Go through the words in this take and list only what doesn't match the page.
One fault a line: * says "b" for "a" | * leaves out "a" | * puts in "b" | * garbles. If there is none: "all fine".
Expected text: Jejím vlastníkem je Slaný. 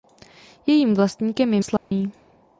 all fine